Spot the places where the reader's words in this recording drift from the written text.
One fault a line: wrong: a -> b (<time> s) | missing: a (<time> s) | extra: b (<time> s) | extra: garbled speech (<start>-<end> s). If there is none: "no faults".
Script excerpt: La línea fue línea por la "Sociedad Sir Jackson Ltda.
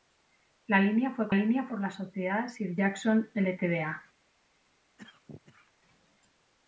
no faults